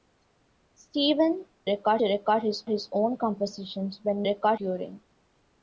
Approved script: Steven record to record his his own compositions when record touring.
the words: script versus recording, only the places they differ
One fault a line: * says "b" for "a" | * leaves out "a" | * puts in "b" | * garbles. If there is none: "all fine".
all fine